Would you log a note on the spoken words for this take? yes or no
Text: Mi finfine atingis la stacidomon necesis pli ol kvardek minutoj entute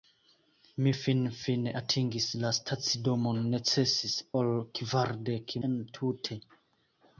yes